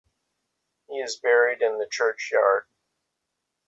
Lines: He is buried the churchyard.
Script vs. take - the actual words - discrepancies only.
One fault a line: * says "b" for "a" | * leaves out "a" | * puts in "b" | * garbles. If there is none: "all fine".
* puts in "in"